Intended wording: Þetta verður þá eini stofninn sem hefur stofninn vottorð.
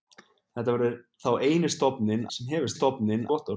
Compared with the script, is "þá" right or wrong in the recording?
right